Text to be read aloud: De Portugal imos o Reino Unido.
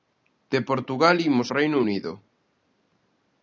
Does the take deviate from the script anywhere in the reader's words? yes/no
no